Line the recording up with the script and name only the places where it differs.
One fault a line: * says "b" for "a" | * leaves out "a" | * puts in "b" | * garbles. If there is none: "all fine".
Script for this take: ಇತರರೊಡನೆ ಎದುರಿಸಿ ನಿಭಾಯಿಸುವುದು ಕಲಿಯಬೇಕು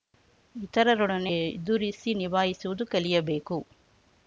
all fine